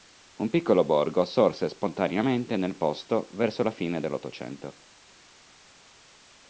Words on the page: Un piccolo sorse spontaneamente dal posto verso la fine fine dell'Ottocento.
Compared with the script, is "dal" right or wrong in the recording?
wrong